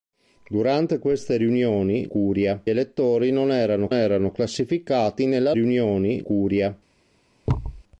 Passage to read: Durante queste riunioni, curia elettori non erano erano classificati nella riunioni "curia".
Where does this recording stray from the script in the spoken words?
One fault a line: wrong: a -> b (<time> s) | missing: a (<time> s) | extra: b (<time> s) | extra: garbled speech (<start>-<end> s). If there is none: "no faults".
no faults